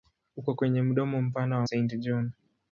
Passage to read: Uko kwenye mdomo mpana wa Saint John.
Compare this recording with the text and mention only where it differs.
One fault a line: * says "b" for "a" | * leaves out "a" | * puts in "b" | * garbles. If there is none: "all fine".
all fine